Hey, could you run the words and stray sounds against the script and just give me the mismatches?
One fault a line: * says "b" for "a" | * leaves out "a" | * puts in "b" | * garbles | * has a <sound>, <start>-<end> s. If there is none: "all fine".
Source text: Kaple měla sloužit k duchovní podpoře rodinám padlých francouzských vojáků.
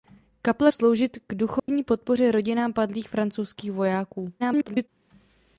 * leaves out "měla"
* has a dropout, 1.6-1.7 s
* garbles